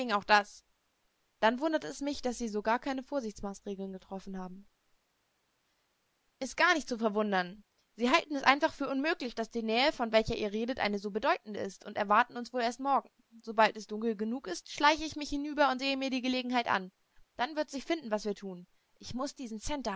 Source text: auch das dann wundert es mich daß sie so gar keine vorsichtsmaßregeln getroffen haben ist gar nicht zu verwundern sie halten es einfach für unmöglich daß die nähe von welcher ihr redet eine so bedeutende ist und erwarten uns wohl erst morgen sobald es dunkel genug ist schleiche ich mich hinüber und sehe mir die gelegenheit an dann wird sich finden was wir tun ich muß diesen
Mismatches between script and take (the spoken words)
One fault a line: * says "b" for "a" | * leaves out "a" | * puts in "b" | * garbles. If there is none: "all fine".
all fine